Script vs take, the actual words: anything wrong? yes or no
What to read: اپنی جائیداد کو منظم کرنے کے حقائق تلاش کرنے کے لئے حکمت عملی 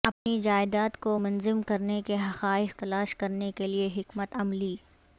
no